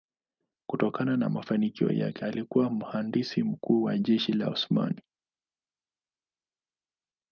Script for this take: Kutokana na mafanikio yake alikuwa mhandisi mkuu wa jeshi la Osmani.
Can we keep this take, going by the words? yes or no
yes